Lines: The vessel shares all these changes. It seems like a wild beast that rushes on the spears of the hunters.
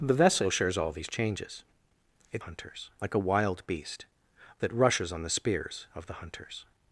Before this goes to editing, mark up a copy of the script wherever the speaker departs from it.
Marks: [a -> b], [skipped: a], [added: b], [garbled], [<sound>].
The vessel shares all these changes. It [seems -> hunters] like a wild beast that rushes on the spears of the hunters.